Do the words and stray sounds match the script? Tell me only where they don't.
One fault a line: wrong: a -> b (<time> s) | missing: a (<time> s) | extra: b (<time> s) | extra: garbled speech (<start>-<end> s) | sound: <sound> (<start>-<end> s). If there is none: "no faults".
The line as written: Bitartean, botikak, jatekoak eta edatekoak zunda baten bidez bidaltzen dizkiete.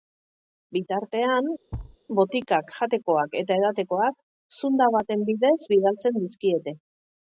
sound: thud (1.7-2.0 s)